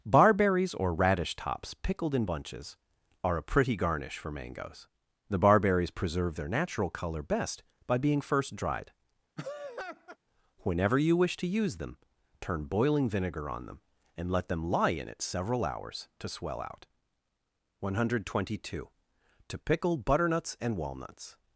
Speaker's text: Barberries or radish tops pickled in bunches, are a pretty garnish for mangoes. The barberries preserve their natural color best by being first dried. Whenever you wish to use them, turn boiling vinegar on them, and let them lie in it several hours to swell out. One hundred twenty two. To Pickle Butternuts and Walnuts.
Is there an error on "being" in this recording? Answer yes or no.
no